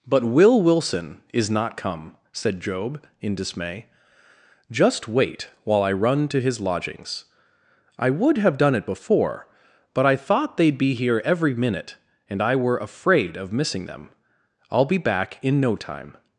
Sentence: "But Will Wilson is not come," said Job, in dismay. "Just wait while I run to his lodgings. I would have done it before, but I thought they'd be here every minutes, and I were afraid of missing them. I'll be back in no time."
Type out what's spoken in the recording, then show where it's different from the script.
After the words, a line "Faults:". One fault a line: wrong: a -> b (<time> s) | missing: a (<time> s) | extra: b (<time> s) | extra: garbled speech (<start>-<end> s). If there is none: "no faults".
"But Will Wilson is not come," said Job, in dismay. "Just wait while I run to his lodgings. I would have done it before, but I thought they'd be here every minute, and I were afraid of missing them. I'll be back in no time."
Faults:
wrong: minutes -> minute (11.5 s)